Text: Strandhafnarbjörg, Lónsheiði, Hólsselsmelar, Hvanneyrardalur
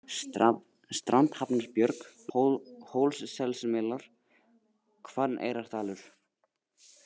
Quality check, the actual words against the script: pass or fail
fail